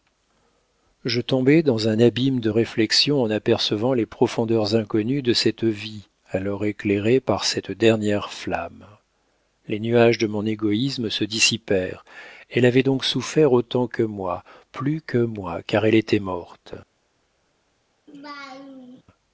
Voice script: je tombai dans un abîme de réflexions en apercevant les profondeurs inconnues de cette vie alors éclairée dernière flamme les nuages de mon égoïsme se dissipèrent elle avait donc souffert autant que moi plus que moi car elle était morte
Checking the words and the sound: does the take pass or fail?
fail